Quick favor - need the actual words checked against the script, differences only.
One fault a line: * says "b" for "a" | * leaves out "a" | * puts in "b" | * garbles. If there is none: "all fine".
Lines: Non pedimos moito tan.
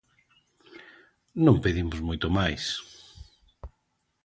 * says "máis" for "tan"